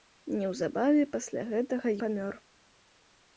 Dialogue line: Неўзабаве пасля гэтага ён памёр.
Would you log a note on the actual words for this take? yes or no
yes